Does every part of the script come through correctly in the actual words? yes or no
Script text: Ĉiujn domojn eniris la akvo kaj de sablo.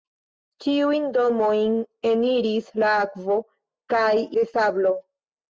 yes